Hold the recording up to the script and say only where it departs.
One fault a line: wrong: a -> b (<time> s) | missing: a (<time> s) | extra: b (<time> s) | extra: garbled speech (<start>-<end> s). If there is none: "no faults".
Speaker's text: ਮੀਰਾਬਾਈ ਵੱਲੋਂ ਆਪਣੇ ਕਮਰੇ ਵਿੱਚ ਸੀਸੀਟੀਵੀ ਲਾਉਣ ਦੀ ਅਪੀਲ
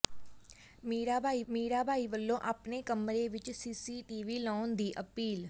extra: ਮੀਰਾਬਾਈ (1.5 s)